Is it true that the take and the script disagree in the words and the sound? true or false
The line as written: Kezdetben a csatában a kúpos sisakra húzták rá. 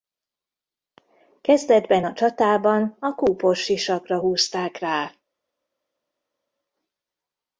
false